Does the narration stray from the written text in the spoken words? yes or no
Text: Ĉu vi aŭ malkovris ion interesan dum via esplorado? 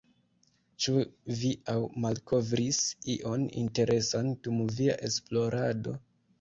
no